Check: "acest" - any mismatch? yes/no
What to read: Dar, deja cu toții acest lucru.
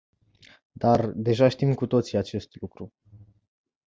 no